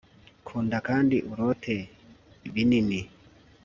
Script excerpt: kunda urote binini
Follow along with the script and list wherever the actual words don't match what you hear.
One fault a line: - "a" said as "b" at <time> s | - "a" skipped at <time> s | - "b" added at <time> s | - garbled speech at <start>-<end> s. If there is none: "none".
- "kandi" added at 0.9 s